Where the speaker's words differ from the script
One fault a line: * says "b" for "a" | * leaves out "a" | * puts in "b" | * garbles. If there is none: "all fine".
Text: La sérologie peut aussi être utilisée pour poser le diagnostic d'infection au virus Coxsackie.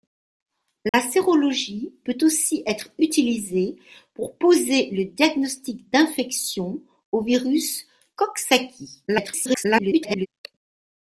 * garbles